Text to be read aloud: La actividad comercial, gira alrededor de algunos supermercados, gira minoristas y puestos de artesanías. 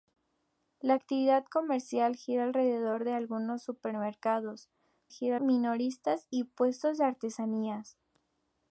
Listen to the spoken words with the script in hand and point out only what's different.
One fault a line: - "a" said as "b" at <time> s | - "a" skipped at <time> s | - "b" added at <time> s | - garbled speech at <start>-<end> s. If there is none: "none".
none